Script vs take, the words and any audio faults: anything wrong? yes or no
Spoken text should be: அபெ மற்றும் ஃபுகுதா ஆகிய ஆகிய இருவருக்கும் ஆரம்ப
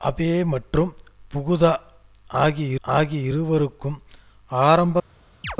yes